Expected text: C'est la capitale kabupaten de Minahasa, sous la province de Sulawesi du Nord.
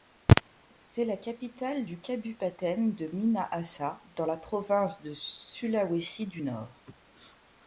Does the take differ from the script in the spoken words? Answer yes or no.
yes